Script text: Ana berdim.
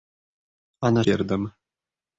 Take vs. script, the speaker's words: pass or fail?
pass